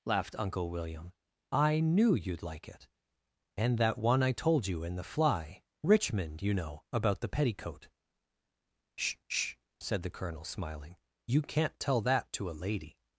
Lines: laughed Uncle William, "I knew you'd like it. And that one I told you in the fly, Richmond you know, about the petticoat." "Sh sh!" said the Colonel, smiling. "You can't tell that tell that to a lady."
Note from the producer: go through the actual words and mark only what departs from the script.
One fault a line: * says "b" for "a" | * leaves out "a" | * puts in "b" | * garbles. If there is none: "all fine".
* leaves out "tell that"